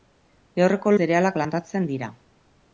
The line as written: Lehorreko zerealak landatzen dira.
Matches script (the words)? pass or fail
pass